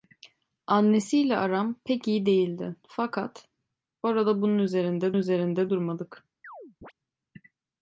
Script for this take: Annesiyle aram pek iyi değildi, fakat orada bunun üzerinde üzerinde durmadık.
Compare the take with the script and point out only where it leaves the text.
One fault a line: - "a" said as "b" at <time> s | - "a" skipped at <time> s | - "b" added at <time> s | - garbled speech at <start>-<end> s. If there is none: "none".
none